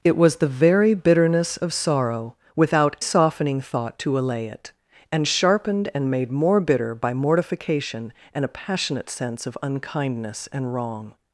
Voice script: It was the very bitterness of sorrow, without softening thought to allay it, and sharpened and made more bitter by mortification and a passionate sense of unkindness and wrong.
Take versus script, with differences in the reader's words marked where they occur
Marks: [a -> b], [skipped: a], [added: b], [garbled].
It was the very bitterness of sorrow, without softening thought to allay it, and sharpened and made more bitter by mortification and a passionate sense of unkindness and wrong.